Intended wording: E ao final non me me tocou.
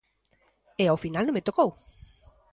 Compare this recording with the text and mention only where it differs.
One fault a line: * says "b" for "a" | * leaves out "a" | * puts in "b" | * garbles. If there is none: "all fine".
* leaves out "me"